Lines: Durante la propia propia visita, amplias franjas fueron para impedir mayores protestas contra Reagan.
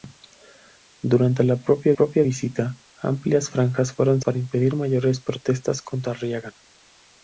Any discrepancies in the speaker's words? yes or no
no